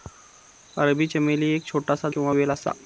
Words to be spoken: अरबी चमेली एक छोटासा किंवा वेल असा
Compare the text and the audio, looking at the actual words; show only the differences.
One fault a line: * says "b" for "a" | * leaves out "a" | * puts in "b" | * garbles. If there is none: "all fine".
all fine